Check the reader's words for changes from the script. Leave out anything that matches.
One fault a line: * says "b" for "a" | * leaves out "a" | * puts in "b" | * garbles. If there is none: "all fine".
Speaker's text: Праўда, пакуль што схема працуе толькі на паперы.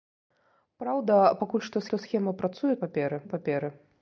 * puts in "што"
* says "паперы" for "толькі"